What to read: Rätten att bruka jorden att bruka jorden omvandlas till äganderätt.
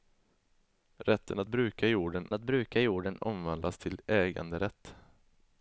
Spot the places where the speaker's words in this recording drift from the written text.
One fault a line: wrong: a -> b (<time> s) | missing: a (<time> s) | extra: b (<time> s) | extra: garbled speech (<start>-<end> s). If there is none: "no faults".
no faults